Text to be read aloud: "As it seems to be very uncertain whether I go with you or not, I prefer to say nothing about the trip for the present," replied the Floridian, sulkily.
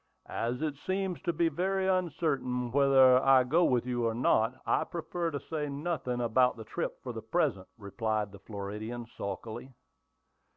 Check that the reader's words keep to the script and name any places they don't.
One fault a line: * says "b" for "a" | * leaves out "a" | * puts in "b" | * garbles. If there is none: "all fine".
all fine